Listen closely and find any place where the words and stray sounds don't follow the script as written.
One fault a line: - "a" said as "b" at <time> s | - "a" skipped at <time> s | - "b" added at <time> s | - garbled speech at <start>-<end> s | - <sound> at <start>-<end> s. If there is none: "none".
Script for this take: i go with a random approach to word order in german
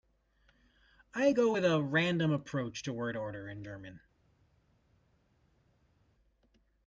none